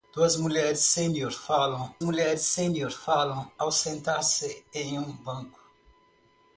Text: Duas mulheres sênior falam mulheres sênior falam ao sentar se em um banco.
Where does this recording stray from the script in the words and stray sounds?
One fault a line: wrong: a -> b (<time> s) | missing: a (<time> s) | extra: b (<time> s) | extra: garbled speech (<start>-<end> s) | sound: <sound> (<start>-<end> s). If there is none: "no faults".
no faults